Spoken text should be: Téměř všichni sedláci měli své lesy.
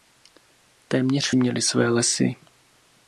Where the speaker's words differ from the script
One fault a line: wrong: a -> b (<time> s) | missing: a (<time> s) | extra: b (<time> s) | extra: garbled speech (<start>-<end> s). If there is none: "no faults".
missing: všichni sedláci (1.3 s)